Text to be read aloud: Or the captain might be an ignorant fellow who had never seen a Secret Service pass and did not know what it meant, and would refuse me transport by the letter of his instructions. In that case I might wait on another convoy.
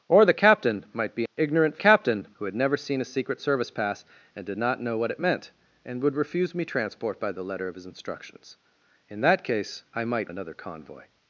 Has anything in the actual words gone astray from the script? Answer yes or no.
yes